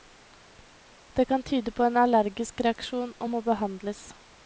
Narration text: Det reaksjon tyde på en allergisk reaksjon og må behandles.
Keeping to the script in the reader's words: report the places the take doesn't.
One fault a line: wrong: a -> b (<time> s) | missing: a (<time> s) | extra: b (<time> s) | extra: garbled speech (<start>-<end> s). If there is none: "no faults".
wrong: reaksjon -> kan (1.3 s)